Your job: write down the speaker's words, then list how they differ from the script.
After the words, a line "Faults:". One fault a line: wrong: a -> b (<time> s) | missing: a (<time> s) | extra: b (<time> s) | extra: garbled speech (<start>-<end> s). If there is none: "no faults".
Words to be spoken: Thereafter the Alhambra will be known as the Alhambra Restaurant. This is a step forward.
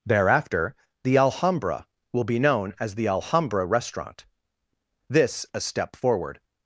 Thereafter the Alhambra will be known as the Alhambra Restaurant. This a step forward.
Faults:
missing: is (5.5 s)